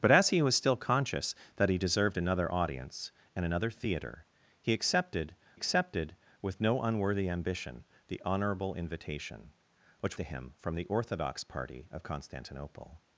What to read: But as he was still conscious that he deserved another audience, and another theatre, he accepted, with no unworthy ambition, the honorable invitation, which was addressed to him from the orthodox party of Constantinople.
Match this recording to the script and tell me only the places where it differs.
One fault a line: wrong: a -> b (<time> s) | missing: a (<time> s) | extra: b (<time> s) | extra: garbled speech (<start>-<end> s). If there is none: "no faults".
extra: accepted (5.5 s)
missing: was addressed (10.2 s)